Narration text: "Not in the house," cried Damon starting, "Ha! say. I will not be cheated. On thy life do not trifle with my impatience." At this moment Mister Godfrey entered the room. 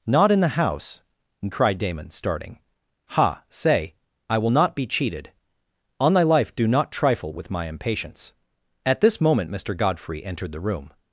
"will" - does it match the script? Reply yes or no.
yes